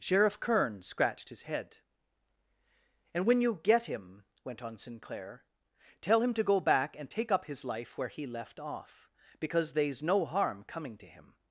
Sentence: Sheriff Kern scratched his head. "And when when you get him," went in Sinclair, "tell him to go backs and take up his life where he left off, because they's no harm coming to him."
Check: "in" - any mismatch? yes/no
yes